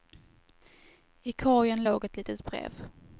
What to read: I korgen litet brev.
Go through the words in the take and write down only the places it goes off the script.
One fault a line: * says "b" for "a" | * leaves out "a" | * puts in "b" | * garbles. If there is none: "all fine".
* puts in "låg ett"